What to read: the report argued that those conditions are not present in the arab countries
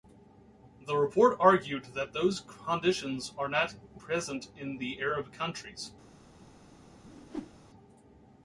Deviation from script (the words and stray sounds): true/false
true